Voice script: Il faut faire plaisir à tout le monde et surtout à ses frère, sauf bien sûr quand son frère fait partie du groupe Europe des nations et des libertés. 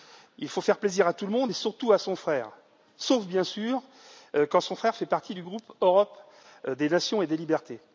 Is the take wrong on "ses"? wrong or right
wrong